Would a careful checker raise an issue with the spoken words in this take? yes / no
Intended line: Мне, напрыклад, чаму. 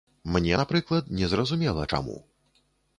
yes